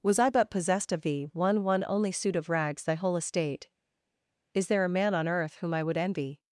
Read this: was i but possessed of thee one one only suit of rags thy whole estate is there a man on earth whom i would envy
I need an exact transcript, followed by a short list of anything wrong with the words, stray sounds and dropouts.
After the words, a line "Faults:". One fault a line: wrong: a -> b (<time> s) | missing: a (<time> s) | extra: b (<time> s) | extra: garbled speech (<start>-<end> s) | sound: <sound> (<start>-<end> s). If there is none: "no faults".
was i but possessed of thee one one only suit of rags thy whole estate is there a man on earth whom i would envy
Faults:
no faults